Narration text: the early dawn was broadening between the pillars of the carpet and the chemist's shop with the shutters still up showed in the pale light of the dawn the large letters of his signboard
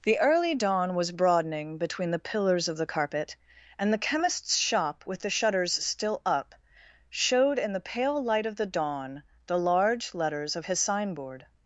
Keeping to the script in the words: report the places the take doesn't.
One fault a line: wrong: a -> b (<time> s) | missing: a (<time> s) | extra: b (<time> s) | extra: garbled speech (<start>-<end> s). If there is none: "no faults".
no faults